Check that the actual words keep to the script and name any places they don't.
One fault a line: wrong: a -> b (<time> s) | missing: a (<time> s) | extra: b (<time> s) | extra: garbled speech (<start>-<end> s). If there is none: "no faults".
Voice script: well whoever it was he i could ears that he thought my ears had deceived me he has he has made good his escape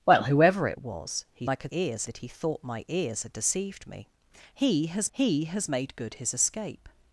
no faults